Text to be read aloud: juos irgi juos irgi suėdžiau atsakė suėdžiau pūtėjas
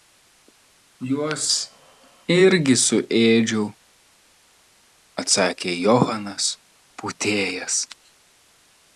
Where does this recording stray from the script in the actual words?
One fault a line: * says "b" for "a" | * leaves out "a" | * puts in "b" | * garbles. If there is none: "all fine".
* leaves out "juos irgi"
* says "johanas" for "suėdžiau"